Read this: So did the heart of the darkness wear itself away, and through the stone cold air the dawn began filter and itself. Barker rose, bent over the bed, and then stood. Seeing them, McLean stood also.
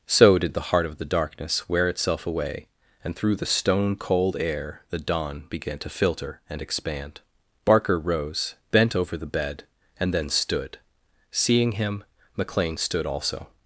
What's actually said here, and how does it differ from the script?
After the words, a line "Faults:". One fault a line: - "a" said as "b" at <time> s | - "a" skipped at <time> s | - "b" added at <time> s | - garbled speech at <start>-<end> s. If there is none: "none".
So did the heart of the darkness wear itself away, and through the stone cold air the dawn began to filter and expand. Barker rose, bent over the bed, and then stood. Seeing him, McLean stood also.
Faults:
- "to" added at 5.8 s
- "itself" said as "expand" at 6.6 s
- "them" said as "him" at 11.7 s